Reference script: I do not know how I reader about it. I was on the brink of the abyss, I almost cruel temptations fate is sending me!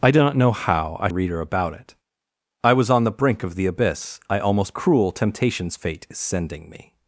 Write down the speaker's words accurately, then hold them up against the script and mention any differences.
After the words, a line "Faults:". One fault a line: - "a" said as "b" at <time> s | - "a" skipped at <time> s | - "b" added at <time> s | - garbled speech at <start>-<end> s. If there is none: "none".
I do not know how I reader about it. I was on the brink of the abyss, I almost cruel temptations fate is sending me!
Faults:
none